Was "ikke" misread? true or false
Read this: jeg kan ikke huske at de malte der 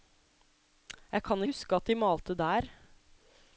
true